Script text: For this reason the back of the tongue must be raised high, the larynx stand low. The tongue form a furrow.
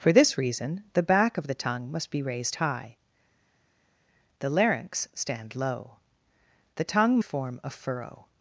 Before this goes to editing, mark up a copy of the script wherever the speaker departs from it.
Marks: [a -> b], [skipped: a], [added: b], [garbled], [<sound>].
For this reason the back of the tongue must be raised high, the larynx stand low. The tongue form a furrow.